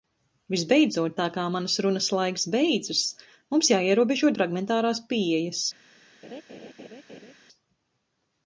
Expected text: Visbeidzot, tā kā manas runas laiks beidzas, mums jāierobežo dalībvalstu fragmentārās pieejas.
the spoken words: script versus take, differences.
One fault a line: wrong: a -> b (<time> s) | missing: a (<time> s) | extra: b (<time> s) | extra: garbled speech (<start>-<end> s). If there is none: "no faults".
missing: dalībvalstu (4.3 s)